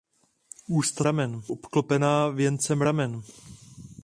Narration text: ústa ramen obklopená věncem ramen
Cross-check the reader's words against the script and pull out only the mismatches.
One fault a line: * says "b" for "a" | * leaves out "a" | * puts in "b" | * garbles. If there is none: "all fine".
all fine